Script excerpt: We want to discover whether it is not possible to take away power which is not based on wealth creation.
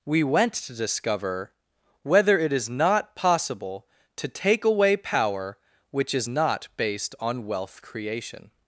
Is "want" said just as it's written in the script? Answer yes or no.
no